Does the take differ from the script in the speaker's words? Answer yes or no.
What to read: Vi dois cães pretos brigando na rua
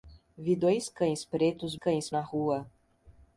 yes